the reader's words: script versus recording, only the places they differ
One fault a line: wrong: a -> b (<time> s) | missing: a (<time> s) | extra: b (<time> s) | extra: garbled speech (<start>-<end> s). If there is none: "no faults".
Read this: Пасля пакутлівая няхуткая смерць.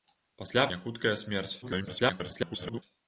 missing: пакутлівая (0.6 s)
extra: garbled speech (1.6-2.8 s)